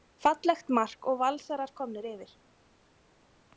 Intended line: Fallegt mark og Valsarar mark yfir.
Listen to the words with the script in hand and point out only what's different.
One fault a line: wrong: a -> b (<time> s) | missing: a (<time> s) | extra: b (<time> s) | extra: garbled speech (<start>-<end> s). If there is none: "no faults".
wrong: mark -> komnir (1.8 s)